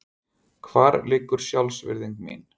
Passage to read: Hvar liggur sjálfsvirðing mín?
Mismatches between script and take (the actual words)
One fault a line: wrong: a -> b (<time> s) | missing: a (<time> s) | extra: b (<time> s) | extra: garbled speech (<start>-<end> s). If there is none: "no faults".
no faults